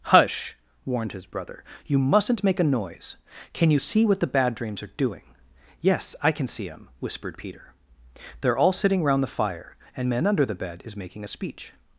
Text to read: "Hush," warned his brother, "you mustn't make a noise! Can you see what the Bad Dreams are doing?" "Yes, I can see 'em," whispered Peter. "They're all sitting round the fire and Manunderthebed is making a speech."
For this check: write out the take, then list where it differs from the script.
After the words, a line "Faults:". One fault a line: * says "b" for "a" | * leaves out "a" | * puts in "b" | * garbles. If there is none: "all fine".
"Hush," warned his brother, "you mustn't make a noise! Can you see what the Bad Dreams are doing?" "Yes, I can see 'em," whispered Peter. "They're all sitting round the fire and Manunderthebed is making a speech."
Faults:
all fine